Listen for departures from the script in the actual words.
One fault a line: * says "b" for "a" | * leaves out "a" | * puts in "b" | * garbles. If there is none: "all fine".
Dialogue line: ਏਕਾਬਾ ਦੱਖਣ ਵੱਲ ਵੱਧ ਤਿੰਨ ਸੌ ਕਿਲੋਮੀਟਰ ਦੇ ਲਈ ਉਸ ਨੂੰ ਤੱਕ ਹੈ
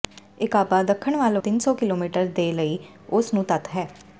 * leaves out "ਵੱਧ"